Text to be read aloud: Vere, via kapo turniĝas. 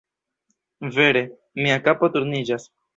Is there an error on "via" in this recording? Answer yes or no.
yes